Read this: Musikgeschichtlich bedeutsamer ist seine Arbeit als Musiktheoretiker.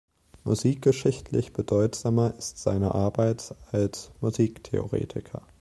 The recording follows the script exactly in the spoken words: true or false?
true